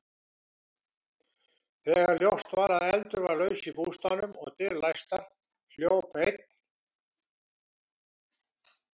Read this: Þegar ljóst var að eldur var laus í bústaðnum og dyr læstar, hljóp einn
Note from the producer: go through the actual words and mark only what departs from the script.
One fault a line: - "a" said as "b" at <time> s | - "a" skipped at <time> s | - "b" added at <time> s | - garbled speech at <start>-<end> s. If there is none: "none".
none